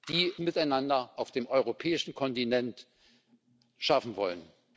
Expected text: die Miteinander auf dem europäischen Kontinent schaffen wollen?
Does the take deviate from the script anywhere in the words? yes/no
no